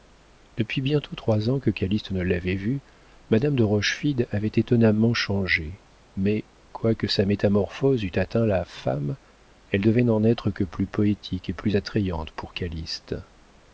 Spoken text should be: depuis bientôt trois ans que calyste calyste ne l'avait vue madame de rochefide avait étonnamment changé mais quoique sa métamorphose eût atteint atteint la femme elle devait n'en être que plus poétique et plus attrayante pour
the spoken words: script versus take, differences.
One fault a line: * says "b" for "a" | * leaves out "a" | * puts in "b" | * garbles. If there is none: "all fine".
* leaves out "calyste"
* leaves out "atteint"